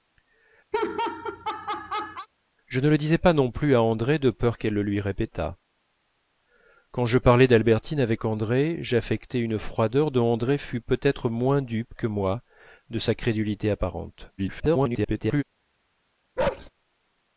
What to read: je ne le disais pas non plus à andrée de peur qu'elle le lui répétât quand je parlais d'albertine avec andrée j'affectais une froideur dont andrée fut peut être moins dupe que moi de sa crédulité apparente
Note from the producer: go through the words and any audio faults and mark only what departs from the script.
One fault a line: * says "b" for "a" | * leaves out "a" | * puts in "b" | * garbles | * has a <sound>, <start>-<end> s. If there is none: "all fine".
* has a laugh, 0.7-2.3 s
* garbles
* has a bark, 16.4-16.7 s